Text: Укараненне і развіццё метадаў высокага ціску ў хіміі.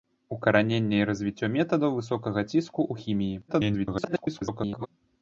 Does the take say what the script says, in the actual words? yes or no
no